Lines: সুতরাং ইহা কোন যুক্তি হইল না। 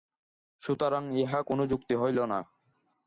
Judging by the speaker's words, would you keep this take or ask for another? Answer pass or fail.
pass